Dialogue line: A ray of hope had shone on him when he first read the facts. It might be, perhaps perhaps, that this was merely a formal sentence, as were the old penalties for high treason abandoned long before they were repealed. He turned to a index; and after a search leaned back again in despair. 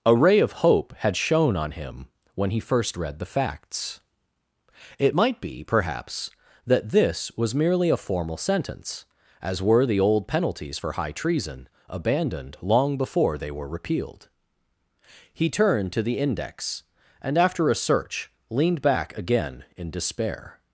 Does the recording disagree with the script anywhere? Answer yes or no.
yes